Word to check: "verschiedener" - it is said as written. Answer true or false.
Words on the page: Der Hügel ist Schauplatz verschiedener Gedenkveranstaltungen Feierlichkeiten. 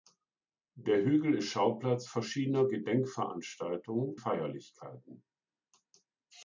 true